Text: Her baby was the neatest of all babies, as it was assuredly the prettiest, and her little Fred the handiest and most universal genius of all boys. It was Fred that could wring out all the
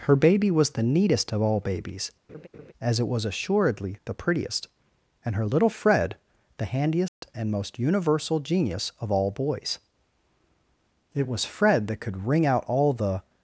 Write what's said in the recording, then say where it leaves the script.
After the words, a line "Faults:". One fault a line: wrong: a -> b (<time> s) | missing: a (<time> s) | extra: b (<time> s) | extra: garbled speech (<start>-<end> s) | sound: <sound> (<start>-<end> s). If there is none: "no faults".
Her baby was the neatest of all babies, as it was assuredly the prettiest, and her little Fred the handiest and most universal genius of all boys. It was Fred that could wring out all the
Faults:
sound: laugh (2.3-2.7 s)
sound: dropout (7.1-7.2 s)